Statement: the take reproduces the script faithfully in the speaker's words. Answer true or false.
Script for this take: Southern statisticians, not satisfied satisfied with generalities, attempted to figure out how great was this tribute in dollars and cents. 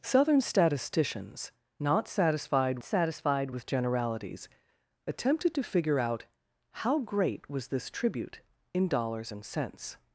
true